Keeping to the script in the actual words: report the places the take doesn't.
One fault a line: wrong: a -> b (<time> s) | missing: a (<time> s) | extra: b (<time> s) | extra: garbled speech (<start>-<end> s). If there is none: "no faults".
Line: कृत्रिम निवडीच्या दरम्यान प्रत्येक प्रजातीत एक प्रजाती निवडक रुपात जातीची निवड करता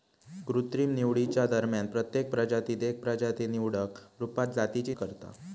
missing: निवड (4.9 s)